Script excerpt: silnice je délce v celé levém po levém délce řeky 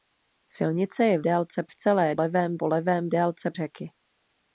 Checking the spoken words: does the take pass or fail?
pass